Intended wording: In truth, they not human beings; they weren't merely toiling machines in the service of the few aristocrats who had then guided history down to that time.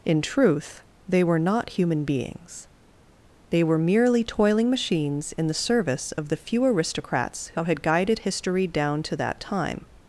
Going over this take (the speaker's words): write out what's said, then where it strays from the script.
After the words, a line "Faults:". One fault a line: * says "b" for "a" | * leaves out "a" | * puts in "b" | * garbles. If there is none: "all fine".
In truth, they were not human beings; they were merely toiling machines in the service of the few aristocrats who had guided history down to that time.
Faults:
* puts in "were"
* says "were" for "weren't"
* leaves out "then"